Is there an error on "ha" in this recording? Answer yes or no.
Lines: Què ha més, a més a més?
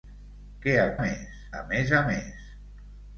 no